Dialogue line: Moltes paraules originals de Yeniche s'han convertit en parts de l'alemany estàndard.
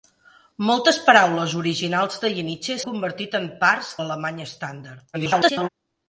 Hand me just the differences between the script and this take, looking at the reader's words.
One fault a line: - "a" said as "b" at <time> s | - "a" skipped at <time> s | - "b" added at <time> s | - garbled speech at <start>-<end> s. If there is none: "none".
- "s'han" skipped at 2.8 s
- "de" skipped at 3.9 s
- garbled speech at 5.1-5.7 s